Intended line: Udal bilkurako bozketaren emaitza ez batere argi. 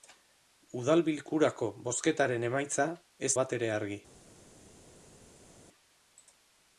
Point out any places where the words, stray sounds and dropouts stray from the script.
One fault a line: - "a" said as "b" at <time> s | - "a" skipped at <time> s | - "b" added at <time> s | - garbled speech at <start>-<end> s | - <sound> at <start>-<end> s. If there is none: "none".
none